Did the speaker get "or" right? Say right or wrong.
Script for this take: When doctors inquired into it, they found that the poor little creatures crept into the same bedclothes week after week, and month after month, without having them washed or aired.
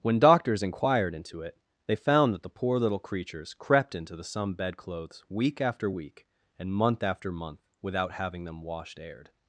wrong